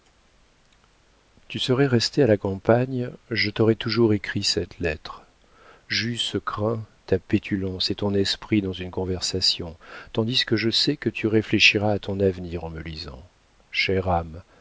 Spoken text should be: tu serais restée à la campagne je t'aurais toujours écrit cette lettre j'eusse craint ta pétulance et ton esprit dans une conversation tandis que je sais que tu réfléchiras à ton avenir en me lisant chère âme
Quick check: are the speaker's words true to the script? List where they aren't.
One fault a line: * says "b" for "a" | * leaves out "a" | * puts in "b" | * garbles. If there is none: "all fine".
all fine